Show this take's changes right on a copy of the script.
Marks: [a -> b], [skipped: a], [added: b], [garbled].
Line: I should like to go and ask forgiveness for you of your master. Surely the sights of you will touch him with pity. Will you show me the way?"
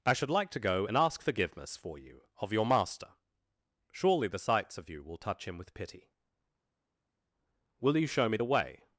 I should like to go and ask forgiveness for you of your master. Surely the sights of you will touch him with pity. Will you show me the way?"